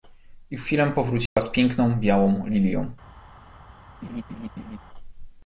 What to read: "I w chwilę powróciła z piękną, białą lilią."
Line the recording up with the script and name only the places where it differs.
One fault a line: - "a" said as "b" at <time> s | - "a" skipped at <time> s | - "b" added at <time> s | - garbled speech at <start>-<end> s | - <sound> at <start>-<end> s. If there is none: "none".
- dropout at 1.3-1.4 s
- laugh at 4.0-4.8 s